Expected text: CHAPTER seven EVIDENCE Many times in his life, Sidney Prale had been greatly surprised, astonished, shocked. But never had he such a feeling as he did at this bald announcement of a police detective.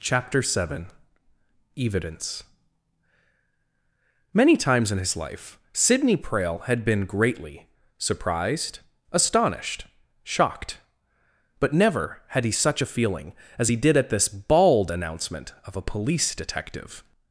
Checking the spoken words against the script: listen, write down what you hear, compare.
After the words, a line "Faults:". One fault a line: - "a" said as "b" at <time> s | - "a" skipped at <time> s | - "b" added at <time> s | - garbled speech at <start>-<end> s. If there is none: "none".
CHAPTER seven EVIDENCE Many times in his life, Sidney Prale had been greatly surprised, astonished, shocked. But never had he such a feeling as he did at this bald announcement of a police detective.
Faults:
none